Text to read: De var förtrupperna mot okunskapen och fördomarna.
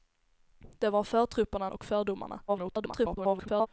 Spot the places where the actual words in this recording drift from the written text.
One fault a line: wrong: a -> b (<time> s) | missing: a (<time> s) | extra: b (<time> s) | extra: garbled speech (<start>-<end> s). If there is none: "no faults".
missing: mot okunskapen (1.7 s)
extra: garbled speech (2.5-3.7 s)